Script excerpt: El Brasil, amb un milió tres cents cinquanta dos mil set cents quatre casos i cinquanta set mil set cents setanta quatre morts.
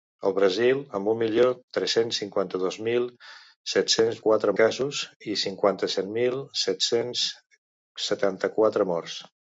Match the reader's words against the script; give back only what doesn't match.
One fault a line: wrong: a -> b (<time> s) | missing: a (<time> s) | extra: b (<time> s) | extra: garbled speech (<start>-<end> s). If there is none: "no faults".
no faults